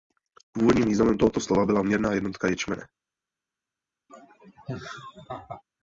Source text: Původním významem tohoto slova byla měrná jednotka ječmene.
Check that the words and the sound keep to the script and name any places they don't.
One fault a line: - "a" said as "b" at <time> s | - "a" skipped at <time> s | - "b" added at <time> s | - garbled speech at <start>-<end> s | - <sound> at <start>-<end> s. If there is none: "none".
- laugh at 4.1-5.6 s